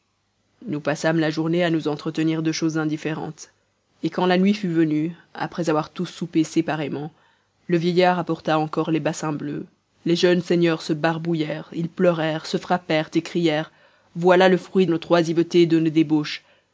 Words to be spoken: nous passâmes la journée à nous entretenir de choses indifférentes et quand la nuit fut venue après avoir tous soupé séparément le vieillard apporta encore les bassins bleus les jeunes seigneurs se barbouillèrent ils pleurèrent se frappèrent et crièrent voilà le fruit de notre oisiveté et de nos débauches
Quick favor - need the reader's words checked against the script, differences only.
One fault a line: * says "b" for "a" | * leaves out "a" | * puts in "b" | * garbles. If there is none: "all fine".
* leaves out "de"